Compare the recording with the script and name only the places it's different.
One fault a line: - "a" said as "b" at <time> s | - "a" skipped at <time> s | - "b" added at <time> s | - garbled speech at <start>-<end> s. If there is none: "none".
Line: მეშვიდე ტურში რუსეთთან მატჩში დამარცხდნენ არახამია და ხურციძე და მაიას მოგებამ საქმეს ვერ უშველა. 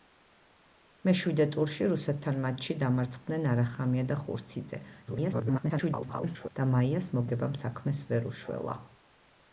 - garbled speech at 5.1-6.5 s